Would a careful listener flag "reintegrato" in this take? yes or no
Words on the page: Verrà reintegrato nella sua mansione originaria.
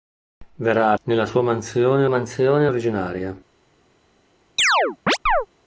yes